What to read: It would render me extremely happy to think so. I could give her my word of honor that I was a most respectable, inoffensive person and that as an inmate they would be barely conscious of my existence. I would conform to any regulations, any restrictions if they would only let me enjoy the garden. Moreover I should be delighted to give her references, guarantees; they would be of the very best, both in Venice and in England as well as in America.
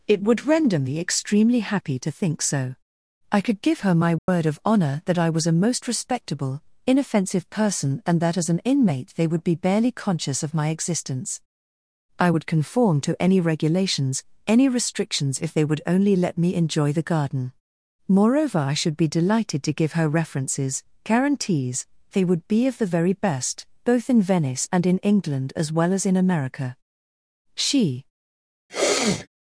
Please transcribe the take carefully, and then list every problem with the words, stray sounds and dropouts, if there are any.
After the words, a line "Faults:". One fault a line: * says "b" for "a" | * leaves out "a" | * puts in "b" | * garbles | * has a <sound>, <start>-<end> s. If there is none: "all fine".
It would render me extremely happy to think so. I could give her my word of honor that I was a most respectable, inoffensive person and that as an inmate they would be barely conscious of my existence. I would conform to any regulations, any restrictions if they would only let me enjoy the garden. Moreover I should be delighted to give her references, guarantees; they would be of the very best, both in Venice and in England as well as in America. She
Faults:
* has a dropout, 4.2-4.3 s
* puts in "She"
* has a sneeze, 28.7-29.3 s